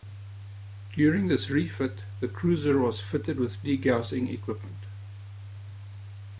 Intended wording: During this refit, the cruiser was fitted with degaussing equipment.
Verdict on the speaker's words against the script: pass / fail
pass